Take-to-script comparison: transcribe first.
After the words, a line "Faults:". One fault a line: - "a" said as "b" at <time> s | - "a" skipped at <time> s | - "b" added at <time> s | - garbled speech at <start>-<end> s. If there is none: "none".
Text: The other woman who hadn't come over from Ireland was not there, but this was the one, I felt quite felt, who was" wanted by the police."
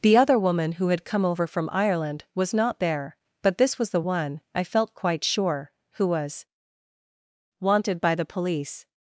The other woman who had come over from Ireland was not there, but this was the one, I felt quite sure, who was" wanted by the police."
Faults:
- "hadn't" said as "had" at 0.9 s
- "felt" said as "sure" at 5.3 s